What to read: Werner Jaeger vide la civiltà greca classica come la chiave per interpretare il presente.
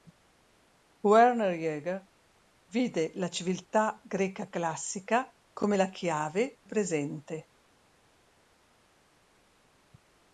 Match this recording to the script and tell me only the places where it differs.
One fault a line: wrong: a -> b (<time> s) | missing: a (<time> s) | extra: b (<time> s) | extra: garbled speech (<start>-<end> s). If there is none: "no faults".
missing: per interpretare il (6.6 s)